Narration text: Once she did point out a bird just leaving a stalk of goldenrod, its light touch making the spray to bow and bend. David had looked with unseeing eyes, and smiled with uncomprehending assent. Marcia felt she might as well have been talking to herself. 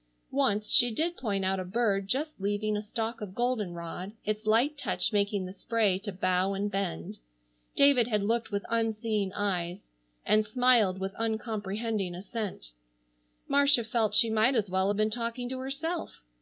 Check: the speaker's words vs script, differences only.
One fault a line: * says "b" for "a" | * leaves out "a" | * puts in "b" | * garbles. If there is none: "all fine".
all fine